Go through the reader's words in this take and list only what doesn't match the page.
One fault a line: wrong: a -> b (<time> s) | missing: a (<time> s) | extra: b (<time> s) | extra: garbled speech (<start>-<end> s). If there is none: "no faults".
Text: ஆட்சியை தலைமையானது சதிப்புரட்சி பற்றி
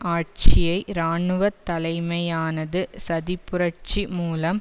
extra: இராணுவ (0.9 s)
wrong: பற்றி -> மூலம் (4.1 s)